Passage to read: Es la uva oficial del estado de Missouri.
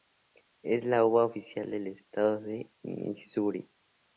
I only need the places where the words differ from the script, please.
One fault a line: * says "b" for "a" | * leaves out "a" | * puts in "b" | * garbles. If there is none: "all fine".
all fine